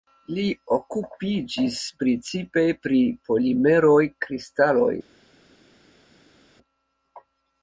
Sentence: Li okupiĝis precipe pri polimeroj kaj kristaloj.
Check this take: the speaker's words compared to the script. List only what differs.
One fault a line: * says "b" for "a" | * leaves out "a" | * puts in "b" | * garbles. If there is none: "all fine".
* leaves out "kaj"